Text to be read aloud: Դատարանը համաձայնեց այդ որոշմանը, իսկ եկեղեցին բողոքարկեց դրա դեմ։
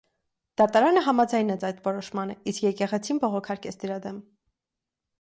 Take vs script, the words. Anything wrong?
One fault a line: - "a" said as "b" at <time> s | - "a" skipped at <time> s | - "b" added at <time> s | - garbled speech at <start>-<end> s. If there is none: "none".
none